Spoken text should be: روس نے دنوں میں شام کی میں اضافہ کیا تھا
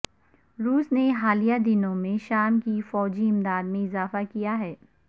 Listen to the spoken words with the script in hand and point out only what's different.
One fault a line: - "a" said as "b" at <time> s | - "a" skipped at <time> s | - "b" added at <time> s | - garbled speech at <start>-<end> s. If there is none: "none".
- "حالیہ" added at 1.1 s
- "فوجی امداد" added at 2.9 s
- "تھا" said as "ہے" at 4.6 s